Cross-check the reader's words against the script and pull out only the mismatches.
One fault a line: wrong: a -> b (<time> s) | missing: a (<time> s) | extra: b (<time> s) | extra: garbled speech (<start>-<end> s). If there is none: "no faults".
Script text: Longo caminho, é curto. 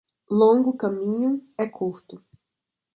no faults